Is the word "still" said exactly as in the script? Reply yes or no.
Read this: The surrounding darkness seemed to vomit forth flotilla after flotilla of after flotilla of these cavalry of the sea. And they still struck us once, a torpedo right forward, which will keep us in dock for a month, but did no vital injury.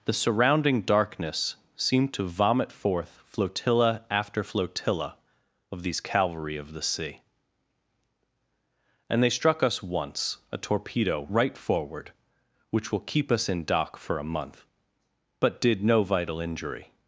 no